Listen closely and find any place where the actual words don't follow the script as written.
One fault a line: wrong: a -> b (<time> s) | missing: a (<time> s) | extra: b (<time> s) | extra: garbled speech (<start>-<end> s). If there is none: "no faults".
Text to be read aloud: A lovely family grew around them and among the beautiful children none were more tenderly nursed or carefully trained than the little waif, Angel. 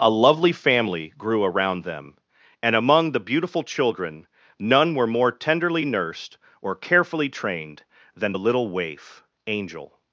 no faults